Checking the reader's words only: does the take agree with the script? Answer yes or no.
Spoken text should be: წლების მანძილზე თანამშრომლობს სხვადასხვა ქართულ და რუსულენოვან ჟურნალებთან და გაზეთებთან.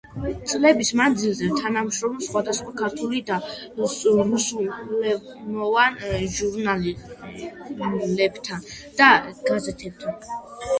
yes